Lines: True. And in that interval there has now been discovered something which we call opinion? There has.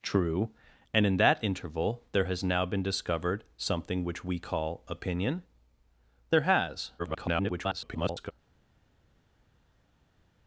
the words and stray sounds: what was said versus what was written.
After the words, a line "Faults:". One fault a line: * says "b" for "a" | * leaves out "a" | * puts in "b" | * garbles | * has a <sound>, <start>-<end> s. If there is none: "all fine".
True. And in that interval there has now been discovered something which we call opinion? There has. [garbled]
Faults:
* garbles